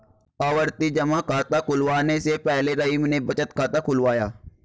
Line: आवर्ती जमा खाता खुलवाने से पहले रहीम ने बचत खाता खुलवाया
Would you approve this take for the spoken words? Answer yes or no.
yes